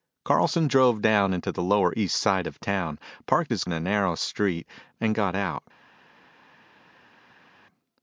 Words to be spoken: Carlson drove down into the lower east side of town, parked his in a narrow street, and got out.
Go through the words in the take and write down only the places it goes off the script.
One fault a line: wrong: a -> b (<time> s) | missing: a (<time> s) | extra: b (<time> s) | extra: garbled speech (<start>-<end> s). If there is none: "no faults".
no faults